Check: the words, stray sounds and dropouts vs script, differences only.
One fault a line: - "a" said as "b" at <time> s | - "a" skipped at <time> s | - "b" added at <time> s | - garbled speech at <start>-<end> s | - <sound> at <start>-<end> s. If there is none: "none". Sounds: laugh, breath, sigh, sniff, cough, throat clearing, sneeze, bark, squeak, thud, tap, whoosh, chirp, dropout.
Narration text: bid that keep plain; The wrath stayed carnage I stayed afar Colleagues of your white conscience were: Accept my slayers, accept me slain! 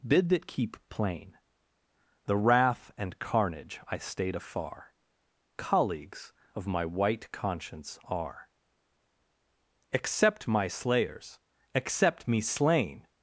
- "stayed" said as "and" at 3.0 s
- "your" said as "my" at 6.7 s
- "were" said as "are" at 8.0 s